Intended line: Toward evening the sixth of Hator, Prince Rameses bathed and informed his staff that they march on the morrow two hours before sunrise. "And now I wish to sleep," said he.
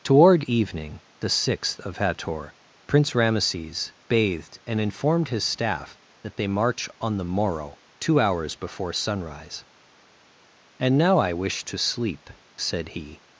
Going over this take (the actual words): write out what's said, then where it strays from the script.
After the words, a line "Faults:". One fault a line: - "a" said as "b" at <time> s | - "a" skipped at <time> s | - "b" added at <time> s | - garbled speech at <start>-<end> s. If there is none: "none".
Toward evening the sixth of Hator, Prince Rameses bathed and informed his staff that they march on the morrow two hours before sunrise. "And now I wish to sleep," said he.
Faults:
none